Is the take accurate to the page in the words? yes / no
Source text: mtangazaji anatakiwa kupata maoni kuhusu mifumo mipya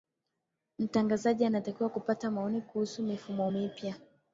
yes